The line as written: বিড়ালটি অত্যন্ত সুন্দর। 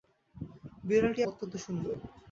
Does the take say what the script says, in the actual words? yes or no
yes